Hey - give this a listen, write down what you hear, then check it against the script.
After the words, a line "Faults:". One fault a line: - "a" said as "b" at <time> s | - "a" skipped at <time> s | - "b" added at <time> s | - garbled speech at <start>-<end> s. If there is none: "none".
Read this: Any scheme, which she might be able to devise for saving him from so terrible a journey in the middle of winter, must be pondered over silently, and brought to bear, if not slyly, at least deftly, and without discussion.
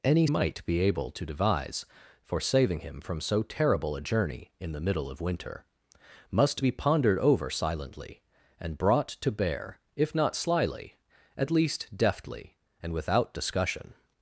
Any might be able to devise for saving him from so terrible a journey in the middle of winter, must be pondered over silently, and brought to bear, if not slyly, at least deftly, and without discussion.
Faults:
- "scheme which she" skipped at 0.2 s